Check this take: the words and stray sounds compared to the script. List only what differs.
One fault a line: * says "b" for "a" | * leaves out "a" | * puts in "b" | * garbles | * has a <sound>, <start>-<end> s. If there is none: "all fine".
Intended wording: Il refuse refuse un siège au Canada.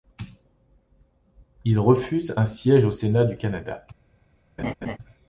* leaves out "refuse"
* puts in "Sénat du"
* has a laugh, 4.6-5.0 s